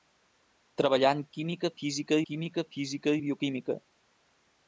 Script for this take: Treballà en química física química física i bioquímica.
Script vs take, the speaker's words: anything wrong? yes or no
no